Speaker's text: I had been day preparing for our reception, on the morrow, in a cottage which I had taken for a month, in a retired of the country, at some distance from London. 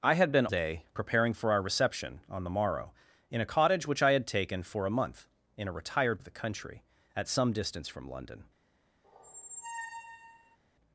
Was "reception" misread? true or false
false